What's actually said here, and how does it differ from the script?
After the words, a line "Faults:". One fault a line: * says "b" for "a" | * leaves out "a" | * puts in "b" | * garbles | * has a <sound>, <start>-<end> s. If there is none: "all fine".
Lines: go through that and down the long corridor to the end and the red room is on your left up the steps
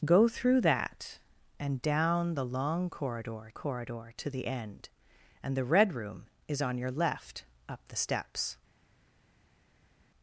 go through that and down the long corridor corridor to the end and the red room is on your left up the steps
Faults:
* puts in "corridor"